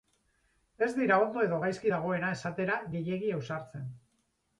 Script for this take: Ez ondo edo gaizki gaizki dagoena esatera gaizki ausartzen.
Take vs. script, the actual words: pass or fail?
fail